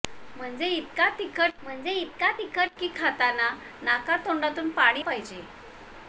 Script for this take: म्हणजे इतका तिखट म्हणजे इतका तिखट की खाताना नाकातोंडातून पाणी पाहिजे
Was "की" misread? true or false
false